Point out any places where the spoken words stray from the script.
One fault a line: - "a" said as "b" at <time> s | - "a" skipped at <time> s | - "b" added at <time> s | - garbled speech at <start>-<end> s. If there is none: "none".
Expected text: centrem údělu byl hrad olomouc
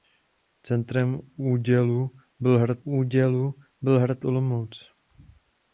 - "údělu byl hrad" added at 2.8 s